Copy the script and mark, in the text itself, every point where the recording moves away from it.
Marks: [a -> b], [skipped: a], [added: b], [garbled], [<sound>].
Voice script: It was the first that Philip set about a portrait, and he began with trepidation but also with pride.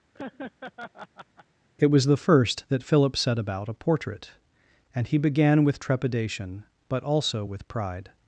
[laugh] It was the first that Philip set about a portrait, and he began with trepidation but also with pride.